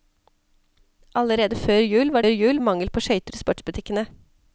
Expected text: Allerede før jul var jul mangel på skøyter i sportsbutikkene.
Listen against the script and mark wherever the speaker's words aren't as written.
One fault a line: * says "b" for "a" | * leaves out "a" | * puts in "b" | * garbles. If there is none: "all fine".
all fine